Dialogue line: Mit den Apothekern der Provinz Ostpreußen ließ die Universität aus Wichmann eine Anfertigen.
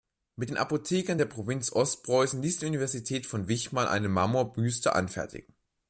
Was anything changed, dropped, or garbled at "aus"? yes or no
yes